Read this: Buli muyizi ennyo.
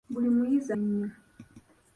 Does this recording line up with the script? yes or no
yes